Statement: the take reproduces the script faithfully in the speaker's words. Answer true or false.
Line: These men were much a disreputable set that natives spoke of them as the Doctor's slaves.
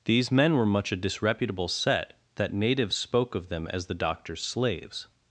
true